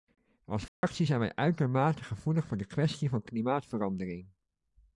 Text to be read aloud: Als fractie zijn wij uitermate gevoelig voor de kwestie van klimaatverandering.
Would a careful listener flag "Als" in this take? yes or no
no